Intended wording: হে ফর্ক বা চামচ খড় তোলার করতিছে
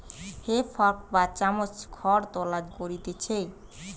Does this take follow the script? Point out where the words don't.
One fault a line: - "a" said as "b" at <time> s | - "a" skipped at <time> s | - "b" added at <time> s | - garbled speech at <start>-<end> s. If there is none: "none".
none